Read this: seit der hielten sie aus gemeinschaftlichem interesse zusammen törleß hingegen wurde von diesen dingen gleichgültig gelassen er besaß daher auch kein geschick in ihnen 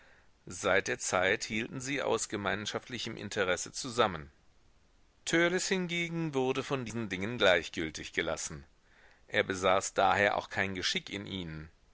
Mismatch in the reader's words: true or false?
true